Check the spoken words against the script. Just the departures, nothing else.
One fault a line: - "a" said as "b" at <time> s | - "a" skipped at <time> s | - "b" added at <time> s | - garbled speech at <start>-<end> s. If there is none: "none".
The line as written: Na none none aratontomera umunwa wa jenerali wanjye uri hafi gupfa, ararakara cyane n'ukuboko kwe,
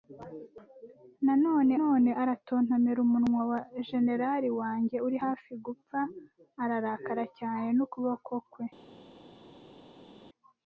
none